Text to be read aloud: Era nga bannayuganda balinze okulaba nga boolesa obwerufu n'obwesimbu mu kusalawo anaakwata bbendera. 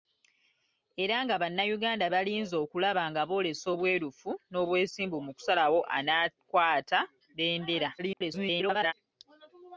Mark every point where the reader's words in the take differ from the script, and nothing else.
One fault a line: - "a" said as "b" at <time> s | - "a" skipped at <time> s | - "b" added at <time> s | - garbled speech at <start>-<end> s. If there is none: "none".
- garbled speech at 8.0-8.9 s